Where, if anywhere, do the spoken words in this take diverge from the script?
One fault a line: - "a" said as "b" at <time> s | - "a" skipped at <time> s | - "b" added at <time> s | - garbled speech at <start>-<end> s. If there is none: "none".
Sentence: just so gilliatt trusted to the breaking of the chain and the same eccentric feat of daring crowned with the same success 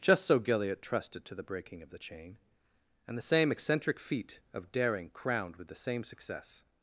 none